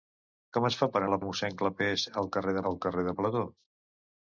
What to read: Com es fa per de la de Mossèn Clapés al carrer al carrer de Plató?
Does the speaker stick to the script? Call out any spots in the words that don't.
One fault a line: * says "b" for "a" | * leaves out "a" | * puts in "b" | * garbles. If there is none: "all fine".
all fine